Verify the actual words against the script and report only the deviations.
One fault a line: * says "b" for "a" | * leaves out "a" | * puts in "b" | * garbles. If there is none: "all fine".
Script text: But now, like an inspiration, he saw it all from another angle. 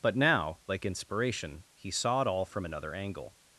* leaves out "an"